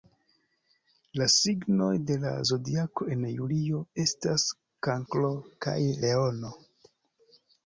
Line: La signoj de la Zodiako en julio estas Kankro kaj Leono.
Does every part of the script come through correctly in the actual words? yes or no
yes